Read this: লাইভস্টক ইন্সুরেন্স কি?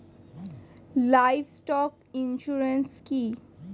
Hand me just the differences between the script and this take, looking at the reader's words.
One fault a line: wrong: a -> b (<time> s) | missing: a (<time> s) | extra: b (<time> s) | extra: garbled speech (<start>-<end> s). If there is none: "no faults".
no faults